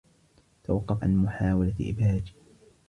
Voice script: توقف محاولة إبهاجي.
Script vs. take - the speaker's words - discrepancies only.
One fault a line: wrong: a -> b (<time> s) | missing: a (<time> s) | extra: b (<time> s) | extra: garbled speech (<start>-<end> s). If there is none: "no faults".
extra: عن (1.0 s)